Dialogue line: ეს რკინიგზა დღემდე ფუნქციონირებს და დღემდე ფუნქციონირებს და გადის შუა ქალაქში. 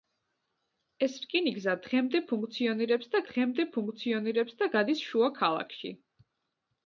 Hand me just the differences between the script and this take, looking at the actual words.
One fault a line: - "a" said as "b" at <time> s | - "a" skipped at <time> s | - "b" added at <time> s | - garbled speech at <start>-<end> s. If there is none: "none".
none